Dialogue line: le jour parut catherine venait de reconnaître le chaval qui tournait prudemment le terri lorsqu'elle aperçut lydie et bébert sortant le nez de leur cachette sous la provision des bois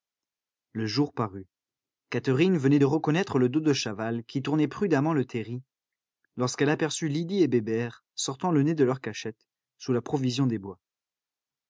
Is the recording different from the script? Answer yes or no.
yes